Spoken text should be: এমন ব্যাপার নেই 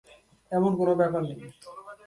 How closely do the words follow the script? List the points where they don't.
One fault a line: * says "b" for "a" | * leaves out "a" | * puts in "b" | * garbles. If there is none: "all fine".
* puts in "কোনো"